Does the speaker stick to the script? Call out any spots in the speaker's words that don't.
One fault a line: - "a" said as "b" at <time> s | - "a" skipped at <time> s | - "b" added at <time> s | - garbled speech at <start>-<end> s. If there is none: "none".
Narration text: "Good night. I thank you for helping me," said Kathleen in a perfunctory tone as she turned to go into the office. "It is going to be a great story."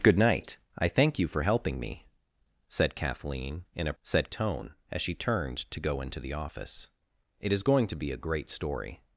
- "perfunctory" said as "said" at 4.0 s